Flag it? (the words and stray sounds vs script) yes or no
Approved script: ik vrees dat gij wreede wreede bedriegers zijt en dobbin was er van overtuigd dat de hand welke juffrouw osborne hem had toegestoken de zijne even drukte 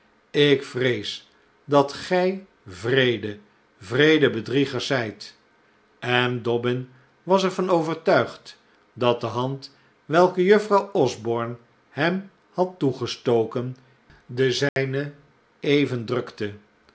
yes